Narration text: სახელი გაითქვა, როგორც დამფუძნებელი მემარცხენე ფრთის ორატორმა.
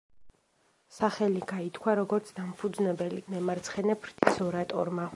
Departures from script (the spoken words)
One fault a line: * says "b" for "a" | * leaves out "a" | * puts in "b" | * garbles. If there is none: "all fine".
all fine